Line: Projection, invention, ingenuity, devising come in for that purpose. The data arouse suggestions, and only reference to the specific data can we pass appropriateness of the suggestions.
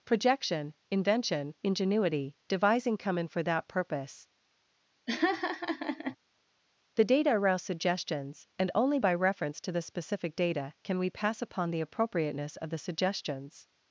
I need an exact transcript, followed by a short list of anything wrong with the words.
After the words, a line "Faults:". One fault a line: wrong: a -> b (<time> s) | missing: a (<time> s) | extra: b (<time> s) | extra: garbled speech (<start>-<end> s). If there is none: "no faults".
Projection, invention, ingenuity, devising come in for that purpose. The data arouse suggestions, and only by reference to the specific data can we pass upon the appropriateness of the suggestions.
Faults:
extra: by (9.0 s)
extra: upon the (11.4 s)